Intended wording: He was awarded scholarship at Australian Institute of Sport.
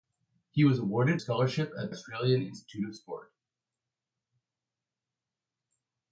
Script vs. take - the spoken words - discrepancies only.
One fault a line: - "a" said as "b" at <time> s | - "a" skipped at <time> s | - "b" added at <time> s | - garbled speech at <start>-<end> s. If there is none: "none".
none